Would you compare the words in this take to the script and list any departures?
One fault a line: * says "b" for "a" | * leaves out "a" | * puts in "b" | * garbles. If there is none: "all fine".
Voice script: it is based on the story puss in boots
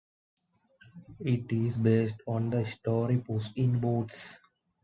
all fine